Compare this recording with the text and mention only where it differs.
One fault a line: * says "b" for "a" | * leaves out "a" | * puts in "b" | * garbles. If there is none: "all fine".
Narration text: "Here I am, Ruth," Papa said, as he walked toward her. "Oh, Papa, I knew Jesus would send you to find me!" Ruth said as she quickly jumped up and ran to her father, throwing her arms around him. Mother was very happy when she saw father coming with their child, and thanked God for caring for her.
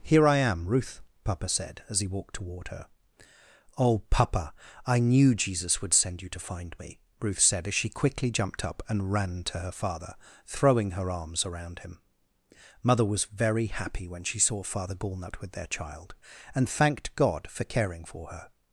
* says "gallnut" for "coming"